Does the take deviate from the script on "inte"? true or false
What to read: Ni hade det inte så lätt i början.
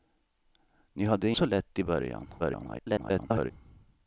true